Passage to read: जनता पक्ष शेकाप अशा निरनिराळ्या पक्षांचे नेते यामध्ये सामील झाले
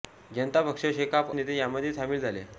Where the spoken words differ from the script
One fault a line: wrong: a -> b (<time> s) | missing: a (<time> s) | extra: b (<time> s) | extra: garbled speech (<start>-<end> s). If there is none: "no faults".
missing: अशा निरनिराळ्या पक्षांचे (1.3 s)